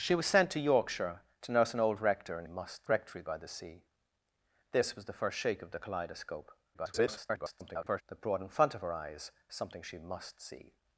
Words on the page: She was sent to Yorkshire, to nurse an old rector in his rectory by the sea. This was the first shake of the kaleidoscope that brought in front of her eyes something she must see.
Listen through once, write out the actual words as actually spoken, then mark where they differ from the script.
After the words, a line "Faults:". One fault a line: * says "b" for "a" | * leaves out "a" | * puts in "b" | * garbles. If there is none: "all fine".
She was sent to Yorkshire, to nurse an old rector in must rectory by the sea. This was the first shake of the kaleidoscope [garbled] that brought in front of her eyes something she must see.
Faults:
* says "must" for "his"
* garbles